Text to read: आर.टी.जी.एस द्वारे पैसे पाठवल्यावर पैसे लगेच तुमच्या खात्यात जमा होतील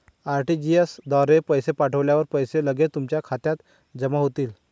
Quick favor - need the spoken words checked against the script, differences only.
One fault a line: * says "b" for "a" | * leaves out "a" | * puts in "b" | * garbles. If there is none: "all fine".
all fine